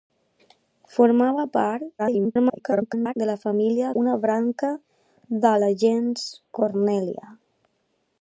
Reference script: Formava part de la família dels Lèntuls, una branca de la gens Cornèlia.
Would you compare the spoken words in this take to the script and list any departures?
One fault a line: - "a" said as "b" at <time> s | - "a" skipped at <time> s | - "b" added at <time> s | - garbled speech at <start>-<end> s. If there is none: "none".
- garbled speech at 2.0-3.1 s
- "dels Lèntuls" skipped at 3.9 s